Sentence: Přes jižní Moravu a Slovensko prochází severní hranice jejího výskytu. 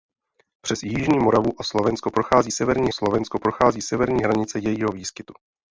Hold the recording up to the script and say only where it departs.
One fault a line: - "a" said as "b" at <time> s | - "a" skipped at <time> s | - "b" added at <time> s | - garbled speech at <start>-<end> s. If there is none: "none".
- "Slovensko prochází severní" added at 2.9 s